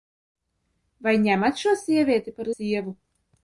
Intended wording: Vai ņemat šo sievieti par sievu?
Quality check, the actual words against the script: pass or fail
pass